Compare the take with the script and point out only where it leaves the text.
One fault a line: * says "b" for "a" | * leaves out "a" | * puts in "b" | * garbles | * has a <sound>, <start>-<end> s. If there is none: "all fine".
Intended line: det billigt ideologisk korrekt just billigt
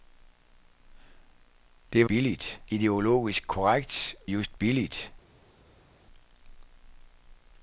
all fine